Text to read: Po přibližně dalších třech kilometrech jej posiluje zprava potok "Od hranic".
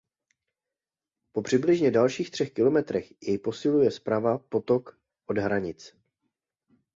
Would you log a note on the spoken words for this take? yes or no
no